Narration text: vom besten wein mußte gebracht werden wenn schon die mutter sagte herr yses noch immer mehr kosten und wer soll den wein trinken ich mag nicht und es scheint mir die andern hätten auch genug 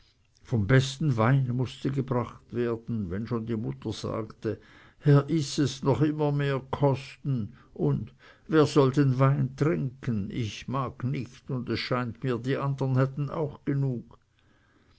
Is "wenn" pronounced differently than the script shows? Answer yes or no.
no